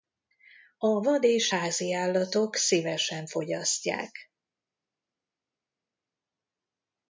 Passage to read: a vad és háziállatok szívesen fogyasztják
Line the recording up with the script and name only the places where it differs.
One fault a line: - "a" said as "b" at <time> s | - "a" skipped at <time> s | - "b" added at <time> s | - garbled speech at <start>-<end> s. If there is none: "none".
none